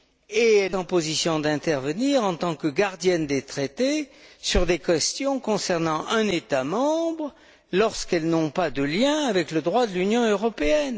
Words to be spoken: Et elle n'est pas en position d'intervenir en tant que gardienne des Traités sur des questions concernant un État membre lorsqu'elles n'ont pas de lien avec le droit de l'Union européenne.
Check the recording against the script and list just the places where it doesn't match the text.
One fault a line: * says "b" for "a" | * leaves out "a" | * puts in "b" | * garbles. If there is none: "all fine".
* leaves out "n'est pas"